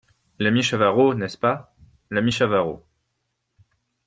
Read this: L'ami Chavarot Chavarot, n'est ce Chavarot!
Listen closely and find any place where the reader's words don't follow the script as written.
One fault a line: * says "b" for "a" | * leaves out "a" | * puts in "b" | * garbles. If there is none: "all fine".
* leaves out "Chavarot"
* puts in "pas l'ami"